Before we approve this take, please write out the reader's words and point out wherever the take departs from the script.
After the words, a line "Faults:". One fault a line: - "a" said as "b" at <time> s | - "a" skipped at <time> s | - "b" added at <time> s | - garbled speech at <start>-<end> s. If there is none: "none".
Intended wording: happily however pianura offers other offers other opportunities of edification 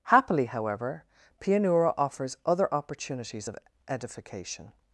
happily however pianura offers other opportunities of edification
Faults:
- "offers other" skipped at 2.7 s